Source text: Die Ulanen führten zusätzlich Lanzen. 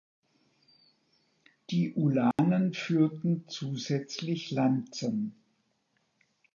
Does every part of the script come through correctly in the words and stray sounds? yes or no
no